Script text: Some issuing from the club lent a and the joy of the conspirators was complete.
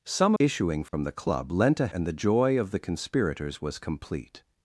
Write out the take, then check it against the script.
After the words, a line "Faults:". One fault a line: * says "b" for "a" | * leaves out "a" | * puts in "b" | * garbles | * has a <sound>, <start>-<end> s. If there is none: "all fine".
Some issuing from the club lent a and the joy of the conspirators was complete.
Faults:
* has a dropout, 0.9-0.9 s